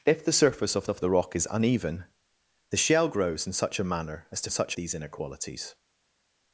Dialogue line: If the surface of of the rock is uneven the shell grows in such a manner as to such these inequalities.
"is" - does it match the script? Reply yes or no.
yes